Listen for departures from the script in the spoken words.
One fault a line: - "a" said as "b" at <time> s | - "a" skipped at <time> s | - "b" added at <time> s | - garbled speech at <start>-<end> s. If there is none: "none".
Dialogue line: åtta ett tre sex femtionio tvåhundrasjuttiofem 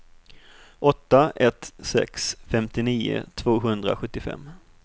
- "tre" skipped at 1.7 s